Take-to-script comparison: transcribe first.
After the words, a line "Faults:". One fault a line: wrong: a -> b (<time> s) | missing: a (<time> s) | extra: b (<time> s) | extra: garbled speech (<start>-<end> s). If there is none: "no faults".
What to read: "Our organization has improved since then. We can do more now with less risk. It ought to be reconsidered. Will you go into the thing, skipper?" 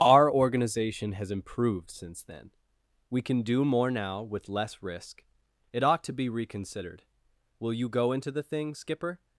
"Our organization has improved since then. We can do more now with less risk. It ought to be reconsidered. Will you go into the thing, skipper?"
Faults:
no faults